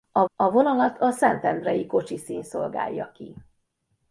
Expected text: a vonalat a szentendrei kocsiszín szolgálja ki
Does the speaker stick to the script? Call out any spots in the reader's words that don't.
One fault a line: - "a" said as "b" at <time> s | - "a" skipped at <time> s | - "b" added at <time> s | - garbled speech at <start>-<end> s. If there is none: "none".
- "a" added at 0.4 s